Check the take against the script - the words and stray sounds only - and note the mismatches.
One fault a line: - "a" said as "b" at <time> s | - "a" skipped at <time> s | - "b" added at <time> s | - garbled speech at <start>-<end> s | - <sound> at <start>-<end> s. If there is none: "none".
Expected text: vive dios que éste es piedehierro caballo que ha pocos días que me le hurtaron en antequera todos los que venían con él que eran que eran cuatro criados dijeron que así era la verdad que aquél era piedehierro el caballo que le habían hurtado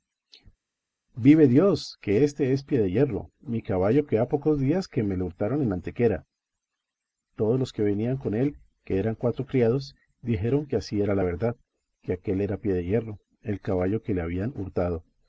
- "mi" added at 3.4 s
- "que eran" skipped at 9.2 s